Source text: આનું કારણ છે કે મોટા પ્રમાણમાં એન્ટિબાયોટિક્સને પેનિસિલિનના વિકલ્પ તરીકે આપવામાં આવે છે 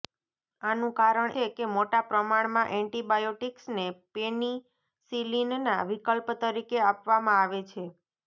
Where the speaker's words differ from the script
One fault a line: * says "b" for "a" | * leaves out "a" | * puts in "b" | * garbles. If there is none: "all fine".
all fine